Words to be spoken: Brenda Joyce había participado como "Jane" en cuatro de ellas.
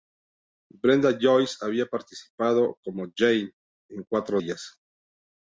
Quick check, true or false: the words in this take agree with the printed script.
false